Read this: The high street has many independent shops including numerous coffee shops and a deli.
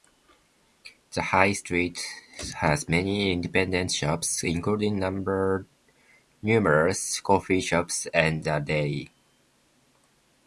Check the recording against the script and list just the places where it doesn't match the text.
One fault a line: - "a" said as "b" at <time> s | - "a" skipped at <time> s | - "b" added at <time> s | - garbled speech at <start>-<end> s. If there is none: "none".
none